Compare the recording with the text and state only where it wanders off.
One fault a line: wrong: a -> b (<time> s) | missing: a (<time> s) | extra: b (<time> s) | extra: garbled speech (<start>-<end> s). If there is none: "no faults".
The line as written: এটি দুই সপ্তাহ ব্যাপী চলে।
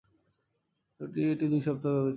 no faults